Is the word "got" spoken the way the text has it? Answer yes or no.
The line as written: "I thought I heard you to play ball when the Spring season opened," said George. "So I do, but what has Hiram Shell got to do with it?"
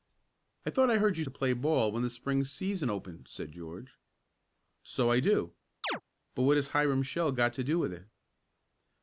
yes